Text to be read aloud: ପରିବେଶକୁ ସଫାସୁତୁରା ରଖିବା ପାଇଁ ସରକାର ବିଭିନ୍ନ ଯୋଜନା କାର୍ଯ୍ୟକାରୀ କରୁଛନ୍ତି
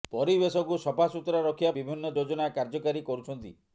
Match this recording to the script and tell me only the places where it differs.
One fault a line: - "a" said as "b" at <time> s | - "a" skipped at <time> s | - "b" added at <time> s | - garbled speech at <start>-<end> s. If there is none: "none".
- "ପାଇଁ ସରକାର" skipped at 1.7 s